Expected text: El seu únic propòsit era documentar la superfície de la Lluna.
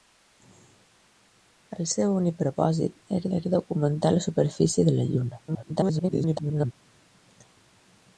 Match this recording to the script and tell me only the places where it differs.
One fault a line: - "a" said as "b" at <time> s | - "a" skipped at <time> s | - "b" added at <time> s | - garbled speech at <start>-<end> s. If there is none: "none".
- "era" added at 3.4 s
- garbled speech at 5.5-6.7 s